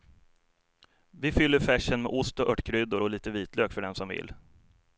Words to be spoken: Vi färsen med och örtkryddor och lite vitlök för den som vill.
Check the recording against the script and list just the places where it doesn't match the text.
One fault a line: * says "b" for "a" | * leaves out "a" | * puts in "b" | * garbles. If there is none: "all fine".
* puts in "fyller"
* puts in "ost"